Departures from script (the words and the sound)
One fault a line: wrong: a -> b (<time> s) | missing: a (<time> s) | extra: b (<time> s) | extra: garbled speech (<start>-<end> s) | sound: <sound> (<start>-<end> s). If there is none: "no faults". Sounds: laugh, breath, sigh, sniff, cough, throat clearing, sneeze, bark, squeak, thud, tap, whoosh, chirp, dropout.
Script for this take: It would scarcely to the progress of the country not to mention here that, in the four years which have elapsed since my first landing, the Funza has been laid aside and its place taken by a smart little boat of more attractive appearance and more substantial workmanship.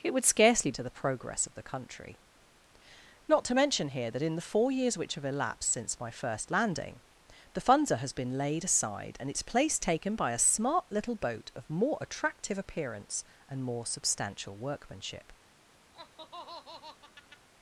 sound: laugh (15.9-17.5 s)